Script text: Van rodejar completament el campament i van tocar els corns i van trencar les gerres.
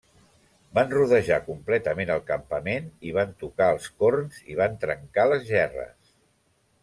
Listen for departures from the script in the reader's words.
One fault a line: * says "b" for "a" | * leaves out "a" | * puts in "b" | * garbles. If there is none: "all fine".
all fine